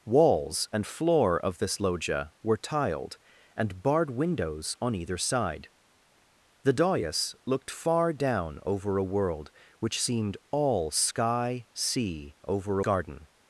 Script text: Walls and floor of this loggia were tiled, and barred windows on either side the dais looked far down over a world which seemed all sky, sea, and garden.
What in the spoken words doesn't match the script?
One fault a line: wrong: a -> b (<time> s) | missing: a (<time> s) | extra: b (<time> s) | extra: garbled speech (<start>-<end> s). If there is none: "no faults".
wrong: and -> over (12.5 s)